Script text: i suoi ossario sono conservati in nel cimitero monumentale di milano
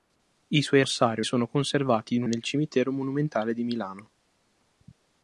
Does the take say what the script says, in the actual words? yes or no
yes